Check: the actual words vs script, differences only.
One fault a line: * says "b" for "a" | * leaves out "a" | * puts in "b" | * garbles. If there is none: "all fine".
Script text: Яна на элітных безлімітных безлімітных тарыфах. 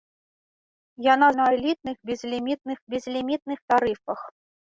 all fine